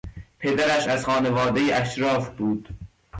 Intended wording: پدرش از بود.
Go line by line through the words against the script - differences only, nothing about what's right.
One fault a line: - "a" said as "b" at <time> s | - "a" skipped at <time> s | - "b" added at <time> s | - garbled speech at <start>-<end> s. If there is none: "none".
- "خانوادهی اشراف" added at 1.0 s